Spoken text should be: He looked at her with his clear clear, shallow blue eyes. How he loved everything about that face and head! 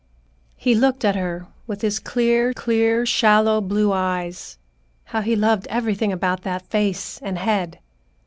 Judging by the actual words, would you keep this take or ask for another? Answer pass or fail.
pass